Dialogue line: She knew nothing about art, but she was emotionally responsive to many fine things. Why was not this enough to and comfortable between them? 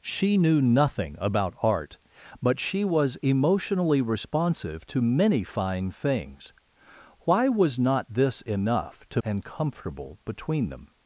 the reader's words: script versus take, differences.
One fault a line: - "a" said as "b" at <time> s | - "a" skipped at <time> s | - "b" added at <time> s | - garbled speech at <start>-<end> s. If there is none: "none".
none